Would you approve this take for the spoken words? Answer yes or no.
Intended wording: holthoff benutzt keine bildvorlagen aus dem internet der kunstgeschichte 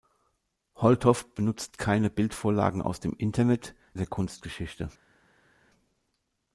yes